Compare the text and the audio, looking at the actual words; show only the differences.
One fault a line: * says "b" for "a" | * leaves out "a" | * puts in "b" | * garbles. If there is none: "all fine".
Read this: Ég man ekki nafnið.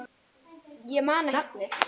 * leaves out "ekki"